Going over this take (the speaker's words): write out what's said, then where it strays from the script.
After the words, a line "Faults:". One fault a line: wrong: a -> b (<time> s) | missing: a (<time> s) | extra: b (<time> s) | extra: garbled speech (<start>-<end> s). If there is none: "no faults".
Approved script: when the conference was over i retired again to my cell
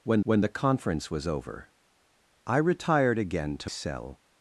when when the conference was over i retired again to cell
Faults:
extra: when (0.2 s)
missing: my (3.7 s)